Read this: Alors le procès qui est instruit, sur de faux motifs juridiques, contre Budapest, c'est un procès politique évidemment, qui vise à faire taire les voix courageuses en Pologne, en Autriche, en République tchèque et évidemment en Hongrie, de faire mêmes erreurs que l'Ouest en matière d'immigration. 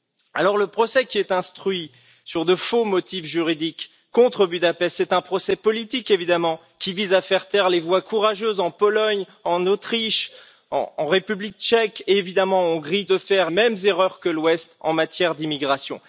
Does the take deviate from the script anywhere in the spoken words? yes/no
no